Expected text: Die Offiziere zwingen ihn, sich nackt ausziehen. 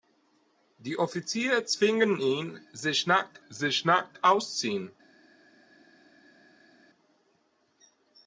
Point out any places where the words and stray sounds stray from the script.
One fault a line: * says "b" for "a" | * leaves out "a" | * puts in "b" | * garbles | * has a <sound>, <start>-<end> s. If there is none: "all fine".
* puts in "sich nackt"